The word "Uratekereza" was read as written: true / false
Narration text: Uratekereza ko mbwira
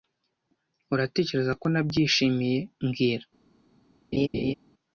true